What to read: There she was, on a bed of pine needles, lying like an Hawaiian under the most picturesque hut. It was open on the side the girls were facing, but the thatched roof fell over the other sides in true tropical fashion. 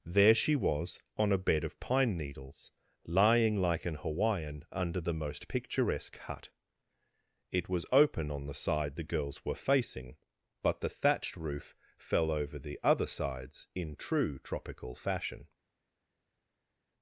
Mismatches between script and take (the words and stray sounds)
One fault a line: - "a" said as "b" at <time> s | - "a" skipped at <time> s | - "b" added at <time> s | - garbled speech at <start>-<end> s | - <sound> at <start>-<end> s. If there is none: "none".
none